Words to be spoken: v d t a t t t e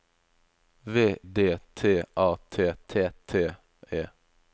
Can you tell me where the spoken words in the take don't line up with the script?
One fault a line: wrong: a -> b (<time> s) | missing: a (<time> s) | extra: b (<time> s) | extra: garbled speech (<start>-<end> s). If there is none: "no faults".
no faults